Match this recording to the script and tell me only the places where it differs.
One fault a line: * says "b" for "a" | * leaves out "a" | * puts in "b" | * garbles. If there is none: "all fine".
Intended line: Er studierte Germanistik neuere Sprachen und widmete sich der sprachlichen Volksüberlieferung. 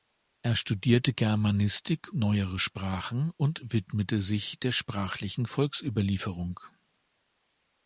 all fine